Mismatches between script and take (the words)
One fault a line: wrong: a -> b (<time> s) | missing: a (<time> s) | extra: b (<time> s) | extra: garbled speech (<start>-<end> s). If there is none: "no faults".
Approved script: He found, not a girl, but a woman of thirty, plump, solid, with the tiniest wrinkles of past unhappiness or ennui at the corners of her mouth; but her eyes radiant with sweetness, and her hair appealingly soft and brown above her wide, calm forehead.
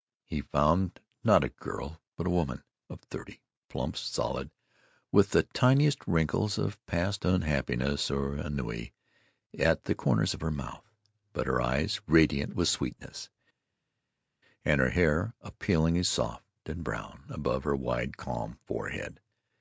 no faults